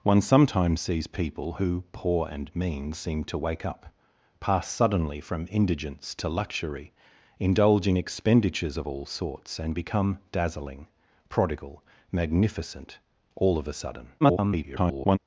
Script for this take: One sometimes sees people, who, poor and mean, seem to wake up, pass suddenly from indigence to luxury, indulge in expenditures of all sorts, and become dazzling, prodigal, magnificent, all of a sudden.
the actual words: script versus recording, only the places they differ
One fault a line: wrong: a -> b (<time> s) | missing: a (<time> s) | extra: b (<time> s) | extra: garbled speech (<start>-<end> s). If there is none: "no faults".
extra: garbled speech (14.2-15.2 s)